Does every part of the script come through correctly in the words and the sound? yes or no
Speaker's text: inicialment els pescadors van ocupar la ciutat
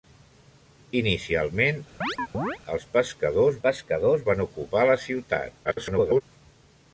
no